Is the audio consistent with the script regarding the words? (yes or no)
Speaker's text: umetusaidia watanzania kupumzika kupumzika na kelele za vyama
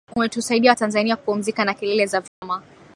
no